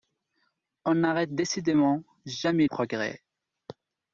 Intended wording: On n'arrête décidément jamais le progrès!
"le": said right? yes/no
no